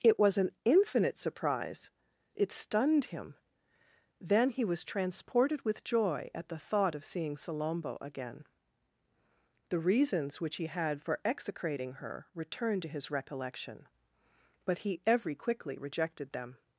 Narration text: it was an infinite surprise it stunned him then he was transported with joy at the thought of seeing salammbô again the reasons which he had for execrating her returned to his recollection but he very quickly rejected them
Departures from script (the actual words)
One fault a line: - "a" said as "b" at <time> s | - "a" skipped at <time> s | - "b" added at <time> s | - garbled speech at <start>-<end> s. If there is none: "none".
- "very" said as "every" at 15.1 s